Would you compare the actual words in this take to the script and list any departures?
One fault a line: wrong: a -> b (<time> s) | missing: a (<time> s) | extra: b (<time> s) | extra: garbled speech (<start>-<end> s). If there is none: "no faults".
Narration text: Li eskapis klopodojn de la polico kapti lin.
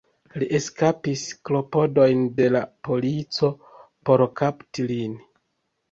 extra: por (4.1 s)